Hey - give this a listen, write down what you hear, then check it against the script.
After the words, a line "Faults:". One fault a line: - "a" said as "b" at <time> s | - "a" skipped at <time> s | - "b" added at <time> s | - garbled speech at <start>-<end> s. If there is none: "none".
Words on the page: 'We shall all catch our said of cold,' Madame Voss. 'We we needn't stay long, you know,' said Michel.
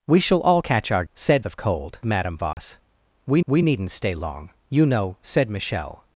'We shall all catch our said of cold,' Madame Voss. 'We we needn't stay long, you know,' said Michel.
Faults:
none